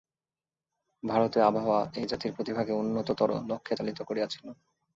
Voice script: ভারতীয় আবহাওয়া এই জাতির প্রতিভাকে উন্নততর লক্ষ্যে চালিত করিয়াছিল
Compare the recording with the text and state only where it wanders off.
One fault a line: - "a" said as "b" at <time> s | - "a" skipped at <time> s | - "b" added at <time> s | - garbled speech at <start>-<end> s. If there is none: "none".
none